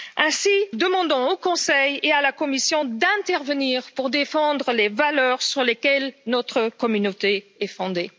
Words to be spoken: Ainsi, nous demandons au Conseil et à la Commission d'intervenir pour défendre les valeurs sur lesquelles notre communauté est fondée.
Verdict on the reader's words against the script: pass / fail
fail